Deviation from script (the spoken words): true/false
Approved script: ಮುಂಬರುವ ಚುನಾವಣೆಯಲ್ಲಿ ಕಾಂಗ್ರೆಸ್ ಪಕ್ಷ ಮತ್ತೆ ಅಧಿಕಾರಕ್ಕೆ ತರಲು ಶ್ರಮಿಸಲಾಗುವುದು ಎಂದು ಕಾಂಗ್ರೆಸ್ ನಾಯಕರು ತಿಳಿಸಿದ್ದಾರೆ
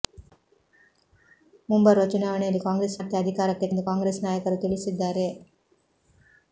true